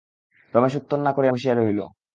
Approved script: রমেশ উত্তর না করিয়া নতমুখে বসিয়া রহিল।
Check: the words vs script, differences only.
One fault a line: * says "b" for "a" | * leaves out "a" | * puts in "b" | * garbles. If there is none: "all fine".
* leaves out "নতমুখে"